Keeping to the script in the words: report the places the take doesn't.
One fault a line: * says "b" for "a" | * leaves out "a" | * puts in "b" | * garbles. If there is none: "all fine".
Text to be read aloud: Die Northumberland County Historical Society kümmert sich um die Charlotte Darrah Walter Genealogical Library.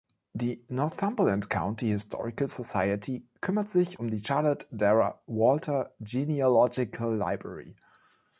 all fine